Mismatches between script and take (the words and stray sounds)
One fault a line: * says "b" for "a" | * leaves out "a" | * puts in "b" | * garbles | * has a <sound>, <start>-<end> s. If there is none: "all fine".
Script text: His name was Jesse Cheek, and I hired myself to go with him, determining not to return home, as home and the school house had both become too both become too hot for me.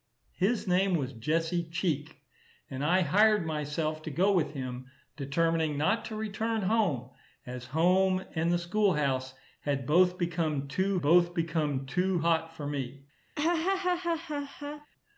* has a laugh, 13.4-14.9 s